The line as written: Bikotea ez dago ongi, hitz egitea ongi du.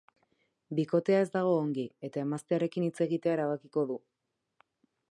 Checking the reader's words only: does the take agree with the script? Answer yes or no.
no